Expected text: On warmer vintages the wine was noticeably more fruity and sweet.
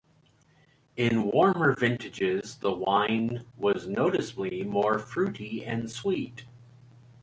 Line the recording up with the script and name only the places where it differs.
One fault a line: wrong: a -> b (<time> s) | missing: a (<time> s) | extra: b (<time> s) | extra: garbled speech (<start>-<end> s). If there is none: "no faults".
wrong: On -> In (0.9 s)